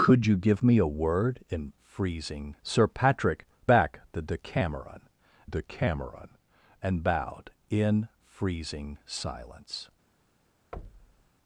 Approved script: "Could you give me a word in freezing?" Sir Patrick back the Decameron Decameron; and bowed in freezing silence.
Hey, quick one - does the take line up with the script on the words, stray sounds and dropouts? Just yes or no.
no